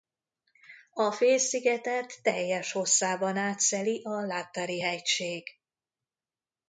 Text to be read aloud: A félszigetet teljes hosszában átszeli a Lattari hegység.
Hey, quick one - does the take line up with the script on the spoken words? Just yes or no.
yes